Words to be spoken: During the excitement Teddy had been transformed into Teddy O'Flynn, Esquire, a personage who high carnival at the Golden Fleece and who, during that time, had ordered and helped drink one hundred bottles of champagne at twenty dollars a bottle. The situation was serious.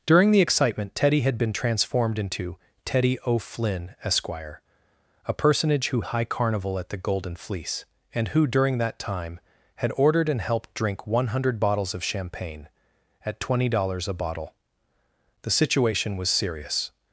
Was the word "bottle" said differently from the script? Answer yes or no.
no